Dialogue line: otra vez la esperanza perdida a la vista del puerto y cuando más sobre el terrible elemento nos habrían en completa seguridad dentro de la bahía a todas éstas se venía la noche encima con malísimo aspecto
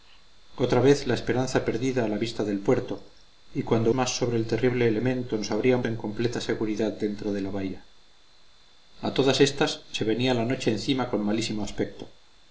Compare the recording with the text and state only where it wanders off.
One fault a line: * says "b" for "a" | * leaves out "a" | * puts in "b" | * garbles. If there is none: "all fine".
all fine